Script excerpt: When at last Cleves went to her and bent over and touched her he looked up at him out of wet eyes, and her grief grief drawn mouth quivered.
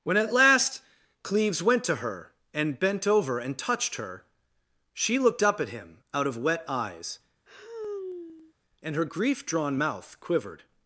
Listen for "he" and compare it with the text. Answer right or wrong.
wrong